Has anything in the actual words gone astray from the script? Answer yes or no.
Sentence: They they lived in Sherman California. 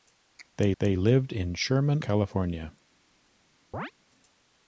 no